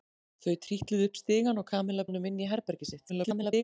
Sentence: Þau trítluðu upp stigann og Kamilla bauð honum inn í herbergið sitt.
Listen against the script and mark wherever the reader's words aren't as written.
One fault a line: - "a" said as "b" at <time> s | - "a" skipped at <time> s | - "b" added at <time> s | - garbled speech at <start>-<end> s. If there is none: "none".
- "bauð" skipped at 2.1 s
- garbled speech at 3.1-3.6 s